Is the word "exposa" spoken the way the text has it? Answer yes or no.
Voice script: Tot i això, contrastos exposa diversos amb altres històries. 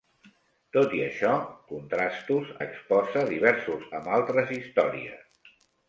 yes